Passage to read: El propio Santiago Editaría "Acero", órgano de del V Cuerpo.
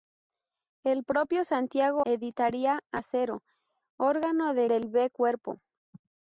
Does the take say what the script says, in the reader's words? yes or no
yes